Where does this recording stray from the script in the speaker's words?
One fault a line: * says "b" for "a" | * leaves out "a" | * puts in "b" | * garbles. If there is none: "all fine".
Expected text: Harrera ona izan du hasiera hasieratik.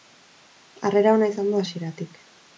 * leaves out "hasiera"